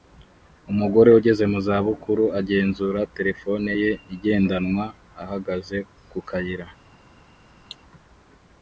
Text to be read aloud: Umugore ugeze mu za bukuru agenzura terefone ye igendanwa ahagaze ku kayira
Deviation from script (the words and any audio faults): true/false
true